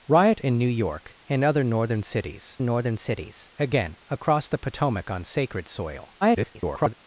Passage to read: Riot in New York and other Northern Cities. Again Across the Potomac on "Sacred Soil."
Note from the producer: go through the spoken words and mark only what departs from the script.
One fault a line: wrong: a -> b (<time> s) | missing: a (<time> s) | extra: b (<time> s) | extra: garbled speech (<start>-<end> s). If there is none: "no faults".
extra: Northern Cities (2.6 s)
extra: garbled speech (6.2-6.9 s)